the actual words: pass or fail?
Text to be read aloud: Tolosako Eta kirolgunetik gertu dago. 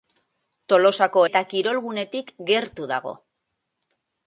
pass